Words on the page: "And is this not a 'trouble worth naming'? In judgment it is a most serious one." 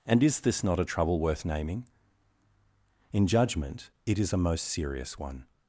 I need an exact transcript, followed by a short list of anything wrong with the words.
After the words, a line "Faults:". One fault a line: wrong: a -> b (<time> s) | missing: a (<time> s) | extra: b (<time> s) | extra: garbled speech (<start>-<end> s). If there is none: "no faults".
"And is this not a 'trouble worth naming'? In judgment it is a most serious one."
Faults:
no faults